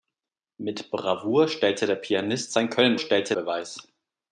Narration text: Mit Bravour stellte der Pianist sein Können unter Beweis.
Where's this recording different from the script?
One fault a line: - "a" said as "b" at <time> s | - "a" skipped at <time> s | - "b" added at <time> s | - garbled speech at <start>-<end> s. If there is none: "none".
- "unter" said as "stellte" at 3.0 s